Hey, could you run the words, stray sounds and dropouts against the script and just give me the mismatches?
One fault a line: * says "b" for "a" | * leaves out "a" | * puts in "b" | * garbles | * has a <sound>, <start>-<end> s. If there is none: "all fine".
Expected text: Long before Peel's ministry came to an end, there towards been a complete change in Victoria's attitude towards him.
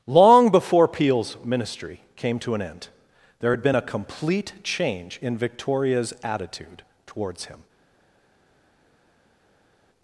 * says "had" for "towards"